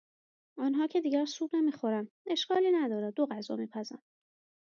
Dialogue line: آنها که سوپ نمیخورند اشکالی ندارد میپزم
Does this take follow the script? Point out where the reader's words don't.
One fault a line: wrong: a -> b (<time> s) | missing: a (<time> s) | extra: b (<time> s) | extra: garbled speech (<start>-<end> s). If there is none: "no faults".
extra: دیگر (1.0 s)
extra: دو غذا (3.1 s)